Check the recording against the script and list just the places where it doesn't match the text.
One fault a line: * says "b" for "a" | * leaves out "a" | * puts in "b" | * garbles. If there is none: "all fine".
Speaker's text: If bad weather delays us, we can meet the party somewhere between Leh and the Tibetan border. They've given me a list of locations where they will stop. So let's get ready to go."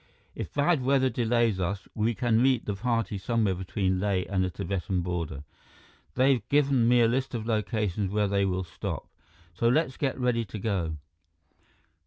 all fine